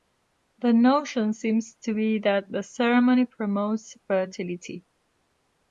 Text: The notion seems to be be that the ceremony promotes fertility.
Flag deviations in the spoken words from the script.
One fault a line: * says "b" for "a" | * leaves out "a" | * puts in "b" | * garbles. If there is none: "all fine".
* leaves out "be"